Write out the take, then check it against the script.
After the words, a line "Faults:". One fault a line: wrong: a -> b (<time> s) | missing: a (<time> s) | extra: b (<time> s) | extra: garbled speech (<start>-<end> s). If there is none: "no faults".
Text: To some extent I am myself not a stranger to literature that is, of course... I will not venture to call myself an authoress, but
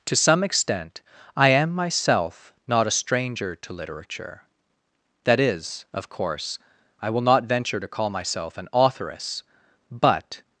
To some extent I am myself not a stranger to literature that is, of course... I will not venture to call myself an authoress, but
Faults:
no faults